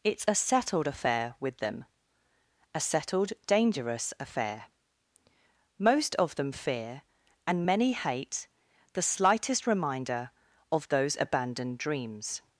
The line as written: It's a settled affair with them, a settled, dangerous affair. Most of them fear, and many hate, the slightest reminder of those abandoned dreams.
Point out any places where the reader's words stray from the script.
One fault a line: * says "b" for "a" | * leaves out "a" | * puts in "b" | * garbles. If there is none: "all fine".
all fine